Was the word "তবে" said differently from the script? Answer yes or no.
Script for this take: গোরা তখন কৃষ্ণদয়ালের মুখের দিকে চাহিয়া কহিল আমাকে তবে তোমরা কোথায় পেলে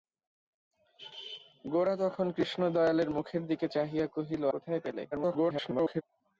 yes